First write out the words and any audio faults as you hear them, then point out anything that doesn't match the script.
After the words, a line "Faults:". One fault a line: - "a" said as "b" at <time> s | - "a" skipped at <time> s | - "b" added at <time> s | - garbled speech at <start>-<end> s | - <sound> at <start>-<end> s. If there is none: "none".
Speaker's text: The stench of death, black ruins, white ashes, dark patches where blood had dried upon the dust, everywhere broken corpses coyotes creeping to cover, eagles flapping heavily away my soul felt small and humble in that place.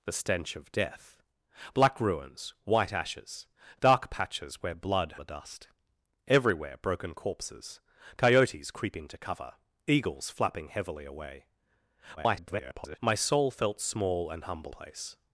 The stench of death, black ruins, white ashes, dark patches where blood the dust, everywhere broken corpses coyotes creeping to cover, eagles flapping heavily away [garbled] my soul felt small and humble place.
Faults:
- "had dried upon" skipped at 5.2 s
- garbled speech at 12.2-13.0 s
- "in that" skipped at 14.7 s